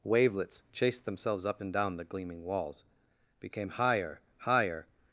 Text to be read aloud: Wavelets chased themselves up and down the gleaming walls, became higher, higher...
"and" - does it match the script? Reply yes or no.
yes